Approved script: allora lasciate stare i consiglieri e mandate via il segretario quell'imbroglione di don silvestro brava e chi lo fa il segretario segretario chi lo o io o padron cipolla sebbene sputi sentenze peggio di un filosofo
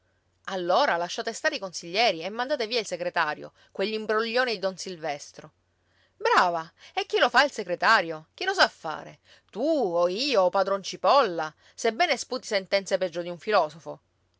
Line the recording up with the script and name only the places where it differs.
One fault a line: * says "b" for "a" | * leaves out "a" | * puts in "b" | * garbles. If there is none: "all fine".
* leaves out "segretario"
* puts in "sa fare tu"